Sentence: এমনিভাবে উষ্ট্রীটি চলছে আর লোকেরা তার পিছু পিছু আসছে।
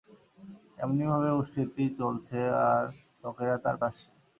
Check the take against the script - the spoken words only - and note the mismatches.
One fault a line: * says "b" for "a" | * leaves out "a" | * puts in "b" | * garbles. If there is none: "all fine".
* leaves out "পিছু পিছু"